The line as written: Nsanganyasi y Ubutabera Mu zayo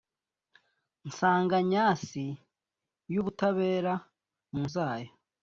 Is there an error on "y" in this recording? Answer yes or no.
no